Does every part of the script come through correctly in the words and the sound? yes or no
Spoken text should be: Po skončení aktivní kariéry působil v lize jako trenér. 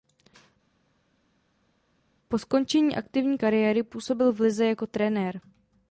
yes